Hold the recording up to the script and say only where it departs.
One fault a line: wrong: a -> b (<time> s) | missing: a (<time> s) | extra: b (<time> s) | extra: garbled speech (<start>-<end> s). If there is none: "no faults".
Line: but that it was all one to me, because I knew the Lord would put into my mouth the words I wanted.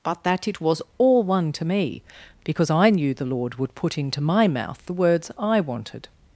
no faults